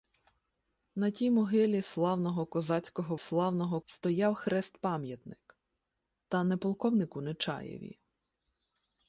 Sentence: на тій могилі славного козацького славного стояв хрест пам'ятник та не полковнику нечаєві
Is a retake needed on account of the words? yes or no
no